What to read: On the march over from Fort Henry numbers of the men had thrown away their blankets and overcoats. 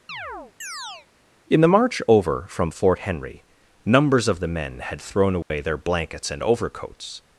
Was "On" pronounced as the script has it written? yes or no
no